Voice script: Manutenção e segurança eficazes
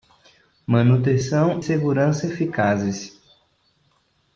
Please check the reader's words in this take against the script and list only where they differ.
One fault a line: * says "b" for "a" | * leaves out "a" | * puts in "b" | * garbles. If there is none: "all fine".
* leaves out "e"